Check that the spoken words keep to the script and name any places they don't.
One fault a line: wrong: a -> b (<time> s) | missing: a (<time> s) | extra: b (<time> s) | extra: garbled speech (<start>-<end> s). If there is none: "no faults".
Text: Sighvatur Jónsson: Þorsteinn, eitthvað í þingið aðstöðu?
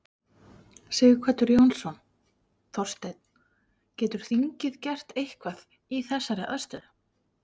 extra: getur þingið gert (4.0 s)
wrong: þingið -> þessari (6.1 s)